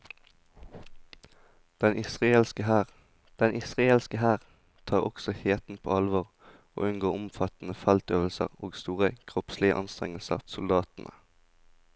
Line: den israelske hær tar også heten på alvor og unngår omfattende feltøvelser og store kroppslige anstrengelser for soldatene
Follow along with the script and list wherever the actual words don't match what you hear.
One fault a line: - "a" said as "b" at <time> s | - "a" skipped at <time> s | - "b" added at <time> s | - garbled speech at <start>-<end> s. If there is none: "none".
- "den israelske hær" added at 3.4 s
- "for" skipped at 10.4 s